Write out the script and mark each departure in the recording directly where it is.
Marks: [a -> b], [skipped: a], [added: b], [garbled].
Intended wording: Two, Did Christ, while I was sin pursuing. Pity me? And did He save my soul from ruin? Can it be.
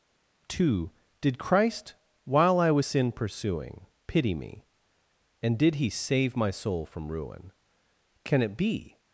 Two, Did Christ, while I was sin pursuing. Pity me? And did He save my soul from ruin? Can it be.